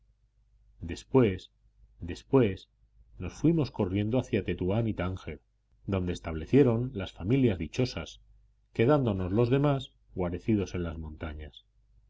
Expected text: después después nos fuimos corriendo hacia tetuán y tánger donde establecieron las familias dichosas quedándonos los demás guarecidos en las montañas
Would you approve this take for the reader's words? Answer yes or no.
yes